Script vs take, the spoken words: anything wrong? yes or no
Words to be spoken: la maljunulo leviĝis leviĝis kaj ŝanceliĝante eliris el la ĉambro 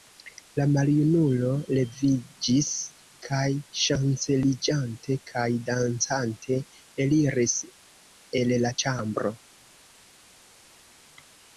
yes